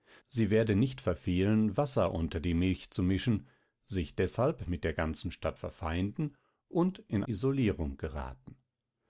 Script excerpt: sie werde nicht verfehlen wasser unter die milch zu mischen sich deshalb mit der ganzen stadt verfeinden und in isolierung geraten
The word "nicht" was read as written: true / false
true